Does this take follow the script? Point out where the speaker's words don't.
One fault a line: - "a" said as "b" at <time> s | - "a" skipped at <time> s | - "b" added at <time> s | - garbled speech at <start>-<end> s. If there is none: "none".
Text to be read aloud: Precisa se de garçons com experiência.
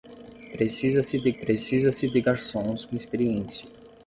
- "precisa se de" added at 1.4 s